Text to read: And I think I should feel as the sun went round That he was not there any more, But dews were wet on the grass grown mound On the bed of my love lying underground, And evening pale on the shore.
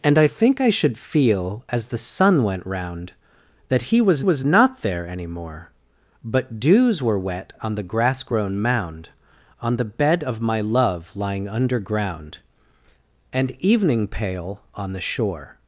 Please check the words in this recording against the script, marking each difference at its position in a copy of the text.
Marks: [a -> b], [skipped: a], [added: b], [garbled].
And I think I should feel as the sun went round That he was [added: was] not there any more, But dews were wet on the grass grown mound On the bed of my love lying underground, And evening pale on the shore.